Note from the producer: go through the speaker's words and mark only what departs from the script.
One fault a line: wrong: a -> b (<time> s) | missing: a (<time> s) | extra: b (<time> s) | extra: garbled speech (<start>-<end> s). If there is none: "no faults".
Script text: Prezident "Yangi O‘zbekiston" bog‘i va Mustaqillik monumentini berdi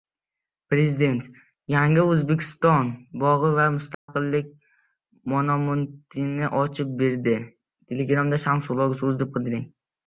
extra: ochib (6.7 s)